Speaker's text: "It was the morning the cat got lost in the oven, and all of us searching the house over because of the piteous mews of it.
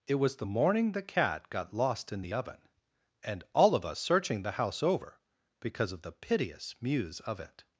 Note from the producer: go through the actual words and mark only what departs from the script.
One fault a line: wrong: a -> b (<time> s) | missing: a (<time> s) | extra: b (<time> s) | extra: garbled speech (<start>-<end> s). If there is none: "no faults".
no faults